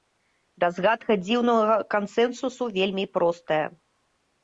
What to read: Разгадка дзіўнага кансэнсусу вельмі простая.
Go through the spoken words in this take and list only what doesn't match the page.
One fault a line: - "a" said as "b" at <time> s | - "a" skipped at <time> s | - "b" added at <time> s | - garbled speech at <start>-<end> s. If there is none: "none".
none